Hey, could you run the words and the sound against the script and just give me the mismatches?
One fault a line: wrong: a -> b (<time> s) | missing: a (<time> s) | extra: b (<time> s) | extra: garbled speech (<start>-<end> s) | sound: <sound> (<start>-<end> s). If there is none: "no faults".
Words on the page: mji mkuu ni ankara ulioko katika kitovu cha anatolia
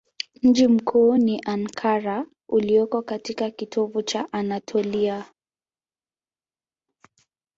no faults